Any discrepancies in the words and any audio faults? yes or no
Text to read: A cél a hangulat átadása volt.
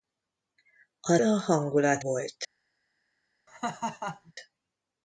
yes